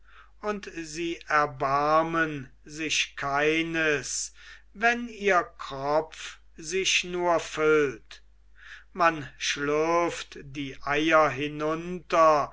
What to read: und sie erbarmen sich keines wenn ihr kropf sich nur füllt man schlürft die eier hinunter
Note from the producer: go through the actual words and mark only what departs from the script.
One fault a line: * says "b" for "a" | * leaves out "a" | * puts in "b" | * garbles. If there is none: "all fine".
all fine